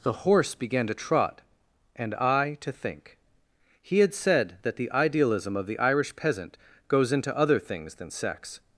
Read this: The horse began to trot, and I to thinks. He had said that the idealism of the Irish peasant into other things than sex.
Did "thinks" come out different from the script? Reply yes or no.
yes